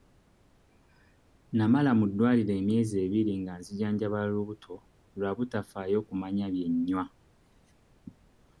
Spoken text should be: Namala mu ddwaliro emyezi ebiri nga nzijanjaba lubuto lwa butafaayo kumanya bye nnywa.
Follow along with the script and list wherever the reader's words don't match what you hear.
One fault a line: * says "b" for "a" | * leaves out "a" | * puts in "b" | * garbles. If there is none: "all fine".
all fine